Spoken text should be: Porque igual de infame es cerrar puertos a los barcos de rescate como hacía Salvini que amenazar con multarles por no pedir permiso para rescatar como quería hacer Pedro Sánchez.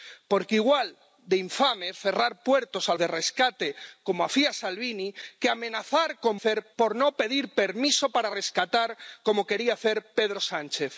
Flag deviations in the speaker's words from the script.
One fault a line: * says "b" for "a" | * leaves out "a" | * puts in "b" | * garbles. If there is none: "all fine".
* leaves out "los barcos"
* says "hacer" for "multarles"